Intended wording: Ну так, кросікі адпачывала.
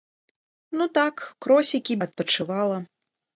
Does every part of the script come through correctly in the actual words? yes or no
yes